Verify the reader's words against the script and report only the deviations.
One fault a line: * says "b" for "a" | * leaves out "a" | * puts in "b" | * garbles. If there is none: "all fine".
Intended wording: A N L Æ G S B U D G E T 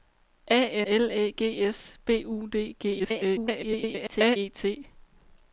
* leaves out "N"
* garbles